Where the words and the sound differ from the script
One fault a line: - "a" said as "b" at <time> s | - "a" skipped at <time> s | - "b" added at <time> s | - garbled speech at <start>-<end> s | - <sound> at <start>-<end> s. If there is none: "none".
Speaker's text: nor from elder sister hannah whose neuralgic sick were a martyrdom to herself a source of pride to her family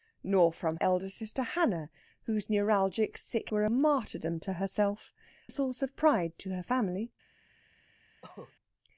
- cough at 8.2-8.5 s